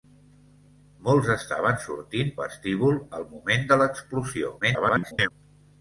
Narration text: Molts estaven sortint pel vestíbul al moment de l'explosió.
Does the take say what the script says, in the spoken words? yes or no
no